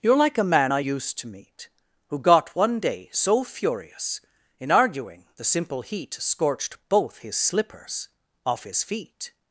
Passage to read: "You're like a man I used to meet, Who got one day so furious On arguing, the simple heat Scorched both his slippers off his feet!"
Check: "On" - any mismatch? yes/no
yes